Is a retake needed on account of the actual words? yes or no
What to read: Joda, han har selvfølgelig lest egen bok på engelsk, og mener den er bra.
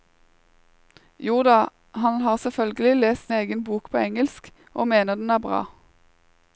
no